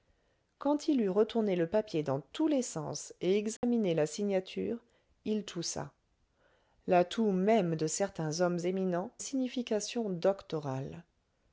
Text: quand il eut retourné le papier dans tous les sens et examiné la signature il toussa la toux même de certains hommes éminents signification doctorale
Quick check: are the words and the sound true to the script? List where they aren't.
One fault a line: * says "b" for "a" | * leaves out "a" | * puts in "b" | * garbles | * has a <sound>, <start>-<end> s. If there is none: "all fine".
* has a dropout, 3.6-3.6 s